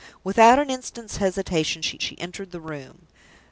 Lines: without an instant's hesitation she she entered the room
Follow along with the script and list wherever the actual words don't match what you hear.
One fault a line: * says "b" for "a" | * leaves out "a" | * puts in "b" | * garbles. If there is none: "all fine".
all fine